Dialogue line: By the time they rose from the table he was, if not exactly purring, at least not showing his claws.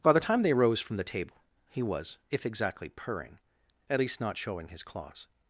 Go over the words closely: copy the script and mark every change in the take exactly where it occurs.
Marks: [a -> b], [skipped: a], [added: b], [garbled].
By the time they rose from the table he was, if [skipped: not] exactly purring, at least not showing his claws.